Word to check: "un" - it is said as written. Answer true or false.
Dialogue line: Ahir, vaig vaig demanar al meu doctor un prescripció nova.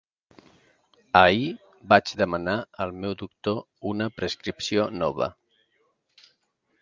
false